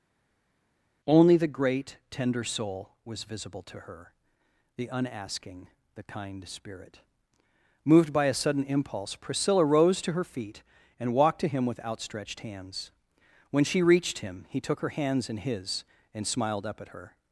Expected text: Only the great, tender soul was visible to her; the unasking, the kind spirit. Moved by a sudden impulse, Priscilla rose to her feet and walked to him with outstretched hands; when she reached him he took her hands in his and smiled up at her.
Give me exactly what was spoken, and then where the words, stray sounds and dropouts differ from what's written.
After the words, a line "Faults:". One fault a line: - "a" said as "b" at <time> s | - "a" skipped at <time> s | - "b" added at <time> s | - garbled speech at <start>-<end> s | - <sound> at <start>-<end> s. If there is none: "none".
Only the great, tender soul was visible to her; the unasking, the kind spirit. Moved by a sudden impulse, Priscilla rose to her feet and walked to him with outstretched hands; when she reached him he took her hands in his and smiled up at her.
Faults:
none